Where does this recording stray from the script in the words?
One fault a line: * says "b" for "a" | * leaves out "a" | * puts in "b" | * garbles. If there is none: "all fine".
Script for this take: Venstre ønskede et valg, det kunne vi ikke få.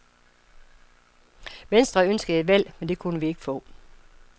* puts in "men"